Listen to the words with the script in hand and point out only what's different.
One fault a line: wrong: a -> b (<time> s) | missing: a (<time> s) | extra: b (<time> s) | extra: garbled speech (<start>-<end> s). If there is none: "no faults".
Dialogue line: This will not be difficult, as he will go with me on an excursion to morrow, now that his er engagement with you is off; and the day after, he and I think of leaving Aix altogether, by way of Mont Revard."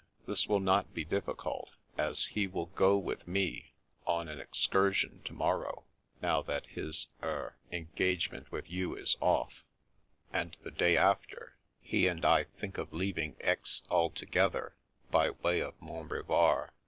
no faults